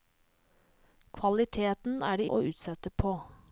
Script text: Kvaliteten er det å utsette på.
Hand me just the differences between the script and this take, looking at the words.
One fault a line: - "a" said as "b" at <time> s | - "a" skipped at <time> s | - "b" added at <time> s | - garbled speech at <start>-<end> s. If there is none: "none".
none